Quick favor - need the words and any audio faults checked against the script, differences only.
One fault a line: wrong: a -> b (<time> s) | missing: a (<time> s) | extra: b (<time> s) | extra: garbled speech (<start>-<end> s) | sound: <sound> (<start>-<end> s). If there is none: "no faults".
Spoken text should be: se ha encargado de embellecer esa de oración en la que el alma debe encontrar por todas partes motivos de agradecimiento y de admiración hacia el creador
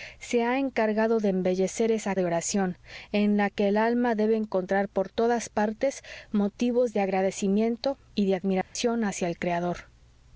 sound: dropout (8.6-8.8 s)